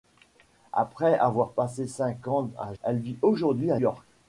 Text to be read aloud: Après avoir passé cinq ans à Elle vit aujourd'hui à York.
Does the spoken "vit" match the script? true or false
true